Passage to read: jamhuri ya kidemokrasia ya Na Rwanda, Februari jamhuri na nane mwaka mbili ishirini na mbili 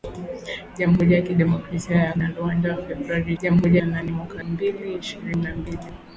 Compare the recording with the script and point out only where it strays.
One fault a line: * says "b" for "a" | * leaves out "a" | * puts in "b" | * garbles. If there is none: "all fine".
all fine